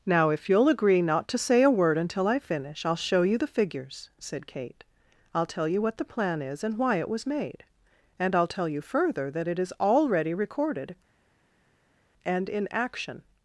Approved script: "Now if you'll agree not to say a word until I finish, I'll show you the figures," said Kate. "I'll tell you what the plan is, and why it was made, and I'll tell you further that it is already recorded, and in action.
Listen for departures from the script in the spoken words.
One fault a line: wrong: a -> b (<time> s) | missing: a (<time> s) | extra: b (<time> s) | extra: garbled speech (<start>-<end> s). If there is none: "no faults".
no faults